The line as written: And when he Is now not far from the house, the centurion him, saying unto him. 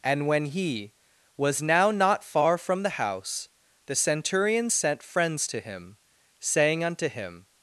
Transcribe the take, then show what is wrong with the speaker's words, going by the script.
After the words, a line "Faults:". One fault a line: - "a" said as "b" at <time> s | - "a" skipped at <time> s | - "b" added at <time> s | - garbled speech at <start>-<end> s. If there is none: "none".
And when he Was now not far from the house, the centurion sent friends to him, saying unto him.
Faults:
- "Is" said as "Was" at 1.4 s
- "sent friends to" added at 4.7 s